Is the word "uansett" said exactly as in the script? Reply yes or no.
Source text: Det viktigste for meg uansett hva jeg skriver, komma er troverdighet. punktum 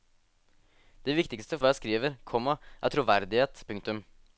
no